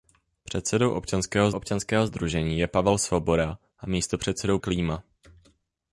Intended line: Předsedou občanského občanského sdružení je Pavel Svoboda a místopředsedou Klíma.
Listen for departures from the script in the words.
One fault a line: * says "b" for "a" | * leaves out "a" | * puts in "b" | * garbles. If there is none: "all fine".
all fine